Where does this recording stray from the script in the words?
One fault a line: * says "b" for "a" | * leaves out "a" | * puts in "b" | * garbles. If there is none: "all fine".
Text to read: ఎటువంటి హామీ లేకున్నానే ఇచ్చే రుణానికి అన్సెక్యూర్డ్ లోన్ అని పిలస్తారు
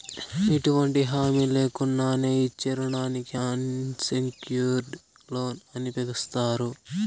all fine